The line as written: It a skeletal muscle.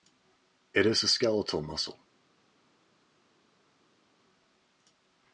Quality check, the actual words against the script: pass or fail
fail